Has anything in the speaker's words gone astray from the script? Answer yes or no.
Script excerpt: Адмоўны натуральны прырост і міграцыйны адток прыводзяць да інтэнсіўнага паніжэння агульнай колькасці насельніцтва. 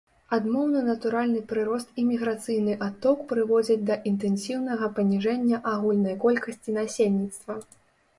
no